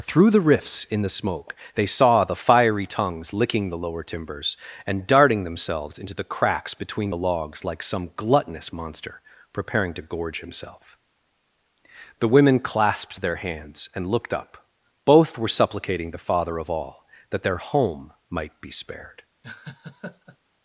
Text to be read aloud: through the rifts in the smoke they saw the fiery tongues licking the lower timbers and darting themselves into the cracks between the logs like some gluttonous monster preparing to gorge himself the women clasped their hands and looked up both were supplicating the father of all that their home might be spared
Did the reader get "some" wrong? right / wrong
right